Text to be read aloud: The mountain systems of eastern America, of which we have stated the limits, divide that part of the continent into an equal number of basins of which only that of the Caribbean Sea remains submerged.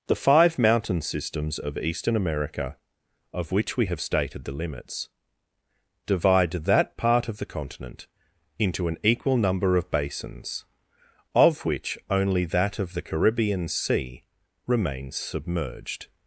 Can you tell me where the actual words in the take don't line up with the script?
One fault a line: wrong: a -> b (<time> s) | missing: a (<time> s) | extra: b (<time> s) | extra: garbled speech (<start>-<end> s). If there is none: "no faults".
extra: five (0.1 s)